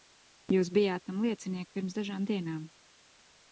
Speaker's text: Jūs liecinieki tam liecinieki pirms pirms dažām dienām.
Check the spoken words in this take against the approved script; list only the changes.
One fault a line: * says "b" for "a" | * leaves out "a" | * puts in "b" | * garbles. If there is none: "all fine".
* says "bijāt" for "liecinieki"
* leaves out "pirms"